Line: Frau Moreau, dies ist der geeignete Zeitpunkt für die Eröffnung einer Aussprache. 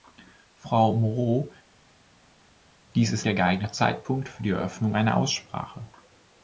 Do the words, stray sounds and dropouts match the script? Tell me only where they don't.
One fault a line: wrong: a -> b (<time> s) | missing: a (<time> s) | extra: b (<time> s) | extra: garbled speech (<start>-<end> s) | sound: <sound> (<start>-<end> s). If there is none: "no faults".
no faults